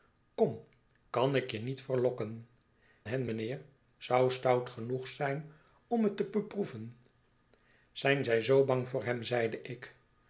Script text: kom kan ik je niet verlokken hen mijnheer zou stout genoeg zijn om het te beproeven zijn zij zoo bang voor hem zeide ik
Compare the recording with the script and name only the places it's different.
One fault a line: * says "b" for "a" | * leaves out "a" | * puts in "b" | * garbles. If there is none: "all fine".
all fine